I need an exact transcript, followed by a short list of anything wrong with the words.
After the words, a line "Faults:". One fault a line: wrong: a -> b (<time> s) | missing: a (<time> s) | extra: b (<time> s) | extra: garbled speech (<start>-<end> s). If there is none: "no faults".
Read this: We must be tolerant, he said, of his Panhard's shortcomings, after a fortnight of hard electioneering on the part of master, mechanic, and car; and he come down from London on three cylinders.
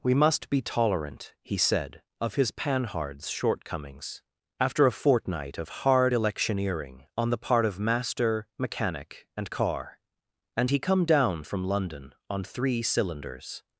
We must be tolerant, he said, of his Panhard's shortcomings, after a fortnight of hard electioneering on the part of master, mechanic, and car; and he come down from London on three cylinders.
Faults:
no faults